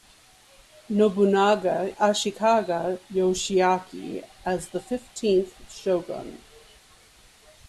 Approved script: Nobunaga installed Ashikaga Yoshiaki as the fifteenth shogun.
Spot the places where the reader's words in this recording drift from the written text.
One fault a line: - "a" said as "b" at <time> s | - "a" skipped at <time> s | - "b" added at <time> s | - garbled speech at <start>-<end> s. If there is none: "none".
- "installed" skipped at 1.9 s